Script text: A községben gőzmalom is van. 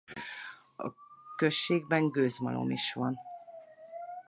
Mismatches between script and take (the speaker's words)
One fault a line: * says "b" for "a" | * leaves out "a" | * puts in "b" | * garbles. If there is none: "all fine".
all fine